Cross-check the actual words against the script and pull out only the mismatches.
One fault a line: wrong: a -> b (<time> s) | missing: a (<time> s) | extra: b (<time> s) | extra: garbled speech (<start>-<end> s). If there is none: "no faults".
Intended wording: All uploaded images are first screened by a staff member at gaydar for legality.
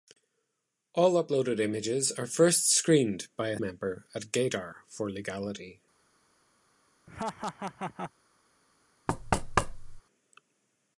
missing: staff (3.6 s)